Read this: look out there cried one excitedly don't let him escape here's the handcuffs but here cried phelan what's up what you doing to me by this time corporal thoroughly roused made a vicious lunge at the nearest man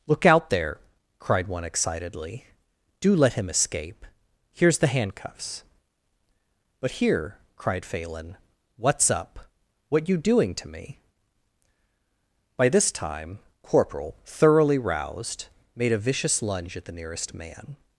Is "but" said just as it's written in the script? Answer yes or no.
yes